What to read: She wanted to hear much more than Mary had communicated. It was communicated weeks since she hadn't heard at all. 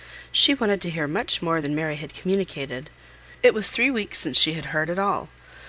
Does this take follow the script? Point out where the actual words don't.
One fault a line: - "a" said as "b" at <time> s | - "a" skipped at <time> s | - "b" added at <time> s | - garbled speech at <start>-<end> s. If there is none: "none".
- "communicated" said as "three" at 3.7 s
- "hadn't" said as "had" at 4.5 s